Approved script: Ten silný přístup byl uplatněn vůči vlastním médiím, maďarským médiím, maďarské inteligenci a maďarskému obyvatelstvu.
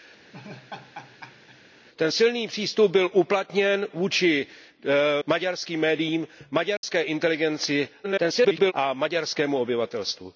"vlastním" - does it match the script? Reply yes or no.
no